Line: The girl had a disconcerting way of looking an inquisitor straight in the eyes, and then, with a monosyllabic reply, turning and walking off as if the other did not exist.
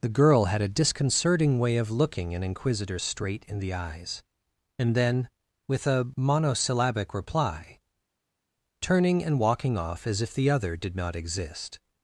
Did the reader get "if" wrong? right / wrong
right